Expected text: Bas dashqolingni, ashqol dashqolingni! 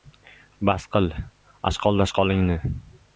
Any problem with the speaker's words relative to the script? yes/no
yes